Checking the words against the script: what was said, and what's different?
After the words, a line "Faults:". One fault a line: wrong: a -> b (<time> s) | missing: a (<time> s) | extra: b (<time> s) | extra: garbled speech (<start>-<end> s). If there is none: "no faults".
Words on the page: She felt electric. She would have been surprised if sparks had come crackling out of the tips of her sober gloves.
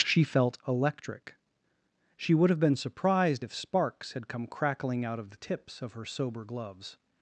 She felt electric. She would have been surprised if sparks had come crackling out of the tips of her sober gloves.
Faults:
no faults